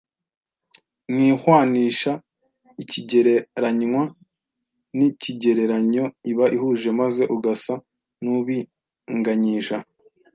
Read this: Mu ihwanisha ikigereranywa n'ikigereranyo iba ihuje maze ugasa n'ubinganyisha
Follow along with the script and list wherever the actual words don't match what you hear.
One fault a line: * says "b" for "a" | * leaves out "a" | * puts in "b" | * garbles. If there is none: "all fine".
all fine